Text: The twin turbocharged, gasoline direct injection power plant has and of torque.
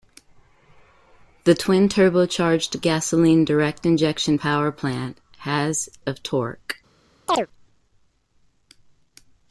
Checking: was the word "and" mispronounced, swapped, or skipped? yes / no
yes